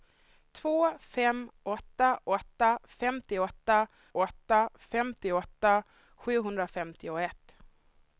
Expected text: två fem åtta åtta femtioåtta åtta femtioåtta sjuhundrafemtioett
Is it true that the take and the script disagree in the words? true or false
false